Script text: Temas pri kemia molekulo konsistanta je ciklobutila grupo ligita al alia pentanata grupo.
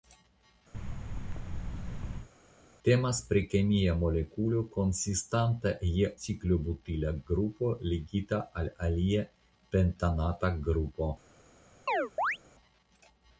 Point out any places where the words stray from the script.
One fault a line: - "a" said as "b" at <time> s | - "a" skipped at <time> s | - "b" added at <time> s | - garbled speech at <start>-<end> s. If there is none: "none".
none